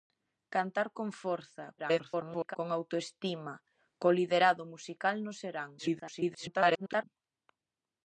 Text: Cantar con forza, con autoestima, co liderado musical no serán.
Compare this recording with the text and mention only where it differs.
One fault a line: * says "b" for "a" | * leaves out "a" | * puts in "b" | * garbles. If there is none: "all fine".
* garbles
* garbles